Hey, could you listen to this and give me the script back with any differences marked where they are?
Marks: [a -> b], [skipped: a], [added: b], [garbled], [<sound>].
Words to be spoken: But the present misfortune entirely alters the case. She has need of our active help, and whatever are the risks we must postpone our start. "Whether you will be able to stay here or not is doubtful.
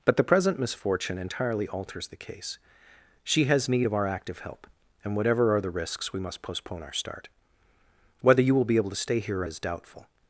But the present misfortune entirely alters the case. She has need of our active help, and whatever are the risks we must postpone our start. "Whether you will be able to stay here or [skipped: not] is doubtful.